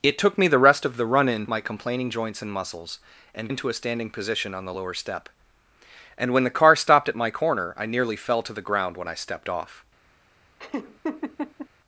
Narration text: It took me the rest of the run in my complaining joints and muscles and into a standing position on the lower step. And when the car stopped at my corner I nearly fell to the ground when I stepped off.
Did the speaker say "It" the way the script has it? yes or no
yes